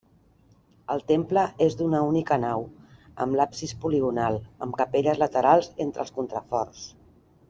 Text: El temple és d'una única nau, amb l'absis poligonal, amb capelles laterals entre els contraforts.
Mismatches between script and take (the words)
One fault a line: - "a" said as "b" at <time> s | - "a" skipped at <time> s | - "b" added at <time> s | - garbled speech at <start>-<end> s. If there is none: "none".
none